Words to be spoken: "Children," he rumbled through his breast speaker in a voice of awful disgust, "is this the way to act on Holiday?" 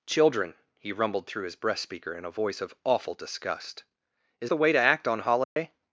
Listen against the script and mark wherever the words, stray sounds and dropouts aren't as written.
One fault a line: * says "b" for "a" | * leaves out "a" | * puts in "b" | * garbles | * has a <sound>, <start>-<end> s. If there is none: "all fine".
* leaves out "this"
* has a dropout, 5.4-5.6 s